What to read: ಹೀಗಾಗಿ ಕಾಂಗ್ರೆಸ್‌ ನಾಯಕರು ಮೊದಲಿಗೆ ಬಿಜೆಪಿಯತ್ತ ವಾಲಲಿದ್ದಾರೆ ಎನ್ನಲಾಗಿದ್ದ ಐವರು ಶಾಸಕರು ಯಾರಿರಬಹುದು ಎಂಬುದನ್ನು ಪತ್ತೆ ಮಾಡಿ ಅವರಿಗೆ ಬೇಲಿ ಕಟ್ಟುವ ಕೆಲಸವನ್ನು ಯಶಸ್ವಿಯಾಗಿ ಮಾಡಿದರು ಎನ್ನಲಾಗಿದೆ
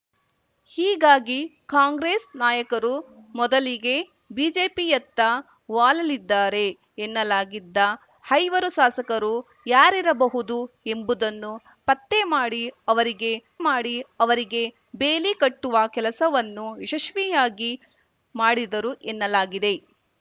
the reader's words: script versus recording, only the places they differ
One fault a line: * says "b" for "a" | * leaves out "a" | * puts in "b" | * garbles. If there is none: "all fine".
* puts in "ಮಾಡಿ ಅವರಿಗೆ"